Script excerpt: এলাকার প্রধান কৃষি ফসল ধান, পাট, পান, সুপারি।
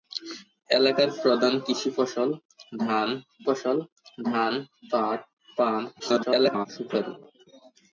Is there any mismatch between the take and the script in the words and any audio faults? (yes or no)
yes